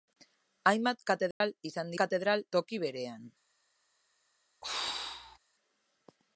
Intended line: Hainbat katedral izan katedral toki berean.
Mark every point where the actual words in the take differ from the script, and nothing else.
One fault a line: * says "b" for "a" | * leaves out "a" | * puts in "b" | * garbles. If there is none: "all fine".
all fine